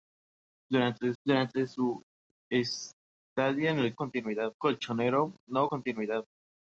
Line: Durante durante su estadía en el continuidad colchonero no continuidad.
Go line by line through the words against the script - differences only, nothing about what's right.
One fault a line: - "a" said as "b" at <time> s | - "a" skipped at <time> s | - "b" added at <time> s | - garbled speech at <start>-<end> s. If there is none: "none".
none